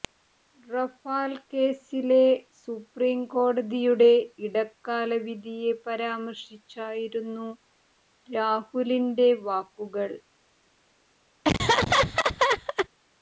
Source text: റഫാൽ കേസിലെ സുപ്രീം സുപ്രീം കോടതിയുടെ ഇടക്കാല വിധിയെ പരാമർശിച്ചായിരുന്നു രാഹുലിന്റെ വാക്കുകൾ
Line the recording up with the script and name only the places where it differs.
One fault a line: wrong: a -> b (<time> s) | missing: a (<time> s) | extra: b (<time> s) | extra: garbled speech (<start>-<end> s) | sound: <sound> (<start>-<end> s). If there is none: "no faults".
missing: സുപ്രീം (3.2 s)
sound: laugh (11.4-12.9 s)